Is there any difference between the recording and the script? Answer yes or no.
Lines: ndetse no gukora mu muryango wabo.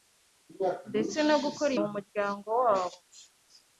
no